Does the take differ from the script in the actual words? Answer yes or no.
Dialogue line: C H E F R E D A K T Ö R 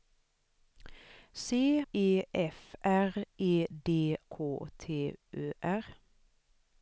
yes